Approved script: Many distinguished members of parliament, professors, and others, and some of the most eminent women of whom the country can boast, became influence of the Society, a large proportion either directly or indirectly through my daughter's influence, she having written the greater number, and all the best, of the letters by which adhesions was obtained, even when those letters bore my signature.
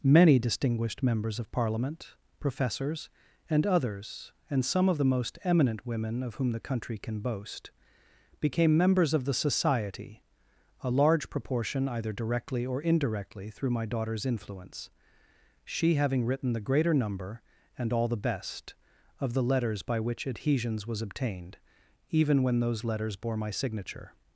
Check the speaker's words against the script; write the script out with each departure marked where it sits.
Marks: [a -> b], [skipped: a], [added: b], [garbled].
Many distinguished members of parliament, professors, and others, and some of the most eminent women of whom the country can boast, became [influence -> members] of the Society, a large proportion either directly or indirectly through my daughter's influence, she having written the greater number, and all the best, of the letters by which adhesions was obtained, even when those letters bore my signature.